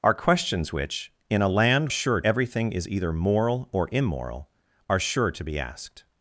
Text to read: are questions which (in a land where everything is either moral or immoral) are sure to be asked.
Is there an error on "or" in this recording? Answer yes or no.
no